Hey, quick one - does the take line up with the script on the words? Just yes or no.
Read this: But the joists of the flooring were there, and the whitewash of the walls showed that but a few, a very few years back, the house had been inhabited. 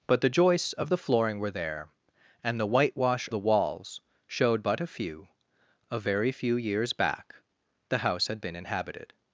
no